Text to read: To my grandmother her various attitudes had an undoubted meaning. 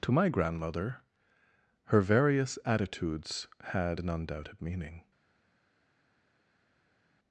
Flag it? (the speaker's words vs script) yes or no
no